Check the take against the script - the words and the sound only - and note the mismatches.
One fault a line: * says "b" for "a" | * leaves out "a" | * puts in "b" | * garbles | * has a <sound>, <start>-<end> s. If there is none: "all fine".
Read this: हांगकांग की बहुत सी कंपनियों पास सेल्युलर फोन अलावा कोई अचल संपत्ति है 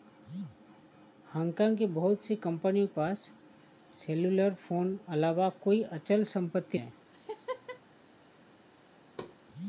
* has a laugh, 7.1-7.8 s
* has a thud, 9.2-9.4 s